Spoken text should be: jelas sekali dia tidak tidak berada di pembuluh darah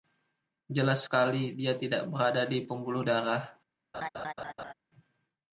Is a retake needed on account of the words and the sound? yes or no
yes